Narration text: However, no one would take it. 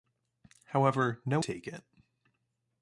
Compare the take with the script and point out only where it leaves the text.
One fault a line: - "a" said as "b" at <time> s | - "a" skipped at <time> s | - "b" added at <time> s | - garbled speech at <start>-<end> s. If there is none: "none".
- "one would" skipped at 1.4 s